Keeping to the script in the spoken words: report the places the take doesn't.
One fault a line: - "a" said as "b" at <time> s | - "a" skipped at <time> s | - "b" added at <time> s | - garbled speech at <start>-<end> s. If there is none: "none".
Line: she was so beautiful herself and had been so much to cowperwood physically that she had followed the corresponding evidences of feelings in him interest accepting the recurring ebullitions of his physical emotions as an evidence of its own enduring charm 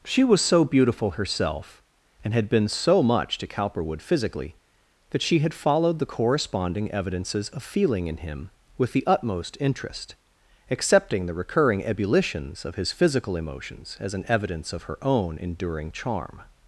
- "feelings" said as "feeling" at 7.6 s
- "with the utmost" added at 8.8 s
- "its" said as "her" at 14.8 s